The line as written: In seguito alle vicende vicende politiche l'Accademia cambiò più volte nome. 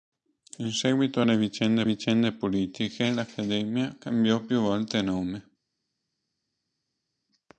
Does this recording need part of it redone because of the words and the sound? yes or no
no